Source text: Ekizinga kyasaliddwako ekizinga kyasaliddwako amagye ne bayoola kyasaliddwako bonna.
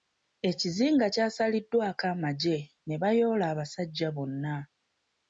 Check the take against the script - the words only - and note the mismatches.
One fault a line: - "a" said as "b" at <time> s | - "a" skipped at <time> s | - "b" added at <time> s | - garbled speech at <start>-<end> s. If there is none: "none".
- "ekizinga kyasaliddwako" skipped at 2.0 s
- "kyasaliddwako" said as "abasajja" at 3.5 s